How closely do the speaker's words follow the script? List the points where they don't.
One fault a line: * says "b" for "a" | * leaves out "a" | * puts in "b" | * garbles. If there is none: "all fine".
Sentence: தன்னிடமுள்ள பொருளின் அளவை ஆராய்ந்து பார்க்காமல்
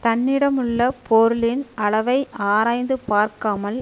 all fine